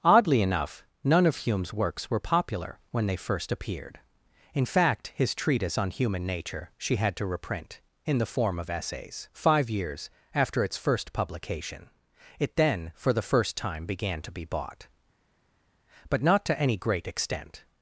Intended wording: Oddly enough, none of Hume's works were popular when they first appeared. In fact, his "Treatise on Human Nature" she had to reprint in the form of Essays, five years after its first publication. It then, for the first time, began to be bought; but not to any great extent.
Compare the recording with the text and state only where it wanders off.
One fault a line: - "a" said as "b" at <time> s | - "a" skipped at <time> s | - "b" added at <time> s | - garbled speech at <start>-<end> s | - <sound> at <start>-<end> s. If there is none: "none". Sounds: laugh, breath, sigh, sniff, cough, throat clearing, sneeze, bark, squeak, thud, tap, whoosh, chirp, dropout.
none